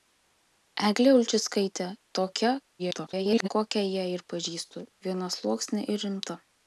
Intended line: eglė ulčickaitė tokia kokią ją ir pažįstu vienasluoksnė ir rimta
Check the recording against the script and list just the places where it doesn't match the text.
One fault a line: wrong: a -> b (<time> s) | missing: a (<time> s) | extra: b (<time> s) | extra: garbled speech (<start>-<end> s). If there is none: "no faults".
extra: garbled speech (2.8-3.5 s)